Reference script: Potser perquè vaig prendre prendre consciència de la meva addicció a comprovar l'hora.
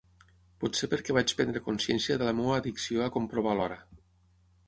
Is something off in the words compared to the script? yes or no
yes